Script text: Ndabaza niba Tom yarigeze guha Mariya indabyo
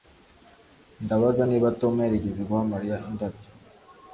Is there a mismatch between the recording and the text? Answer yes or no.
no